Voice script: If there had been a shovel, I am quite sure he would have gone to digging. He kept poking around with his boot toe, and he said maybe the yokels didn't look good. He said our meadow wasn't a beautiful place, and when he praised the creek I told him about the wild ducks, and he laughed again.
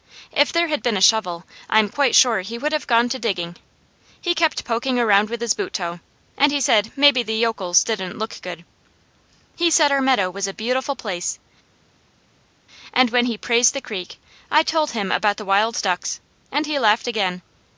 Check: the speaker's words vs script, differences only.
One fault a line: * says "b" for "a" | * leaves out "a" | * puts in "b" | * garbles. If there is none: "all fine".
* says "was" for "wasn't"